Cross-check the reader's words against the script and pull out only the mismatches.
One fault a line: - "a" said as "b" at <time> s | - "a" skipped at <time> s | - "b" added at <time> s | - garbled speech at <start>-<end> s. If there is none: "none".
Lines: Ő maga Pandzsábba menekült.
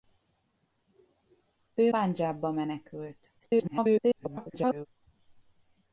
- "maga" skipped at 1.9 s
- garbled speech at 3.4-4.9 s